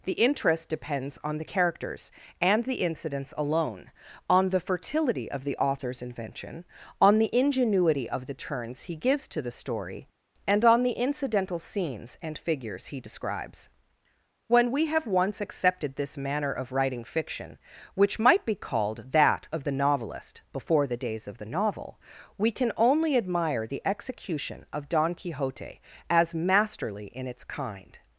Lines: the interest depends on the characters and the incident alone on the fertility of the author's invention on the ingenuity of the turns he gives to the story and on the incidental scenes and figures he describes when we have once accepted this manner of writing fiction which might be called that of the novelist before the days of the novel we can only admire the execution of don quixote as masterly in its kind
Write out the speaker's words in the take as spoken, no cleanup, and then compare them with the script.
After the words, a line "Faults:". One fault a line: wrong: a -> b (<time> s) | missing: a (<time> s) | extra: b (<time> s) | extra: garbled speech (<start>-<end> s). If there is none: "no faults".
the interest depends on the characters and the incidents alone on the fertility of the author's invention on the ingenuity of the turns he gives to the story and on the incidental scenes and figures he describes when we have once accepted this manner of writing fiction which might be called that of the novelist before the days of the novel we can only admire the execution of don quixote as masterly in its kind
Faults:
wrong: incident -> incidents (2.8 s)